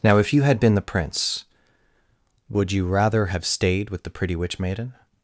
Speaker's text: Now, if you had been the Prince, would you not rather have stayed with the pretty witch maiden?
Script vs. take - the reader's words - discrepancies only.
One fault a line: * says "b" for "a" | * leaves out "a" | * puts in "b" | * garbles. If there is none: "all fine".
* leaves out "not"